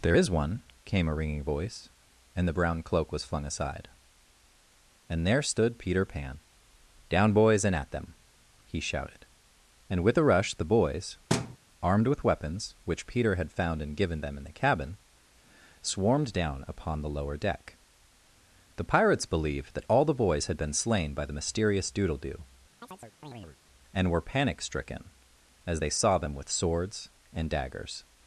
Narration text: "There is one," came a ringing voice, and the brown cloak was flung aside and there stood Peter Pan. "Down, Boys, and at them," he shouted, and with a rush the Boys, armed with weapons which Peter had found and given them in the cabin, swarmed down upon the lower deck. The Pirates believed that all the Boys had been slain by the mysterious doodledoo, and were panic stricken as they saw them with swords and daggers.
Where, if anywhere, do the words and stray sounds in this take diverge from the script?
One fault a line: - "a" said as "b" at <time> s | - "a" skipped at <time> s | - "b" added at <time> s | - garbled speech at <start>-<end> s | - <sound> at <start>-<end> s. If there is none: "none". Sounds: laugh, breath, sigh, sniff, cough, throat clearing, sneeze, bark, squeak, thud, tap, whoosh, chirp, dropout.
- thud at 11.3-11.6 s
- chirp at 22.8-23.6 s